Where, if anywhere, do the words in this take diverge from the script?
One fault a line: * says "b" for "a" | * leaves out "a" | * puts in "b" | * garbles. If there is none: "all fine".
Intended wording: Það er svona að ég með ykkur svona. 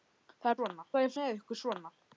all fine